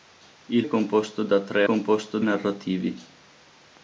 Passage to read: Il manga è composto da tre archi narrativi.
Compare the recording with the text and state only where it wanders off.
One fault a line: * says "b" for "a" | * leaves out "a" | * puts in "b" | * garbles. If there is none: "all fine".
* leaves out "manga"
* says "composto" for "archi"